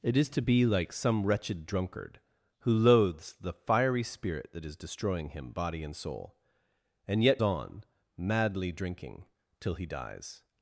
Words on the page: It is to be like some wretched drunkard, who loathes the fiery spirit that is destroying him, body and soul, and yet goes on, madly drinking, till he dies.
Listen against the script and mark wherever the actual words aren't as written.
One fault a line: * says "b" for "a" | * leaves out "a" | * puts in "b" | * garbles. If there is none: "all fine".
* leaves out "goes"